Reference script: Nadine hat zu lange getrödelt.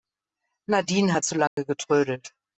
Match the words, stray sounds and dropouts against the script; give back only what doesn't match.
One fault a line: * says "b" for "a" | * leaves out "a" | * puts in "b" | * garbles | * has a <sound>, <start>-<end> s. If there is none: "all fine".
* has a dropout, 1.5-1.6 s